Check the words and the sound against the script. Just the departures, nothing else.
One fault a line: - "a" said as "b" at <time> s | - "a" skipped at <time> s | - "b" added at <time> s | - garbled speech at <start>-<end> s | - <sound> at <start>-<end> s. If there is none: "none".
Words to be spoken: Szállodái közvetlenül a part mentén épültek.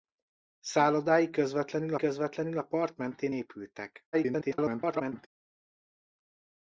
- "közvetlenül" added at 1.9 s
- garbled speech at 4.1-5.3 s